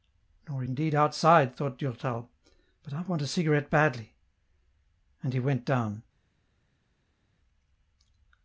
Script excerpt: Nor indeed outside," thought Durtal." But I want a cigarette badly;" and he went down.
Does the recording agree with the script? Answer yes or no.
yes